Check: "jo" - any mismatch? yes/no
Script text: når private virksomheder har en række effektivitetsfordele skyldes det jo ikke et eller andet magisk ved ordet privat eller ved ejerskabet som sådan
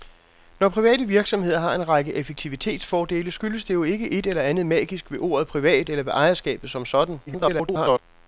no